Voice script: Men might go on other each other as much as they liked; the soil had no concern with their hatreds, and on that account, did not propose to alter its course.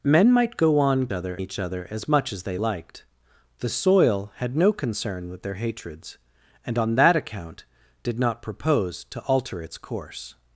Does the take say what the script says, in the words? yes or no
yes